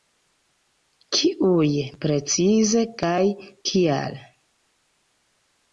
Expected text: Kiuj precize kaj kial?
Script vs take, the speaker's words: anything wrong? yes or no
no